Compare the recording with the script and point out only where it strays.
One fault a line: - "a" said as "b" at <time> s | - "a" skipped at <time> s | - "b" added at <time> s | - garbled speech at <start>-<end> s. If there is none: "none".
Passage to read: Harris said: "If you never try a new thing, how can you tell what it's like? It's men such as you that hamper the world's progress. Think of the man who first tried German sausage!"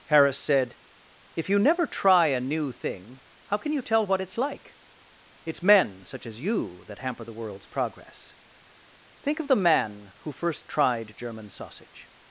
none